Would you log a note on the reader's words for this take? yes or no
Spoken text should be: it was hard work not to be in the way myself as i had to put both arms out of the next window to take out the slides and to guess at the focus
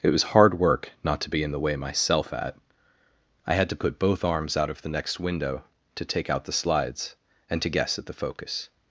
yes